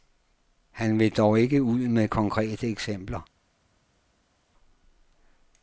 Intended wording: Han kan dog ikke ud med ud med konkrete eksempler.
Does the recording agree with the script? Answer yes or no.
no